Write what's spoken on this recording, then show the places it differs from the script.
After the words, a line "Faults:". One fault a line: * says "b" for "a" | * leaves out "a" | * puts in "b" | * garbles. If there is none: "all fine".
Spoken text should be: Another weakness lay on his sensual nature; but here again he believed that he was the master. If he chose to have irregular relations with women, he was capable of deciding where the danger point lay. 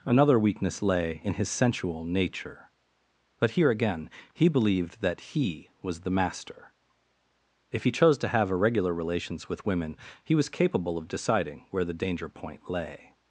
Another weakness lay in his sensual nature; but here again he believed that he was the master. If he chose to have irregular relations with women, he was capable of deciding where the danger point lay.
Faults:
* says "in" for "on"